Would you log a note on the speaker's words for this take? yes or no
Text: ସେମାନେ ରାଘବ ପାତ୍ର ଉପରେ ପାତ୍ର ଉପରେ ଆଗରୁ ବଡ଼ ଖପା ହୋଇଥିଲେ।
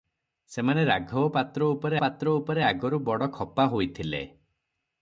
no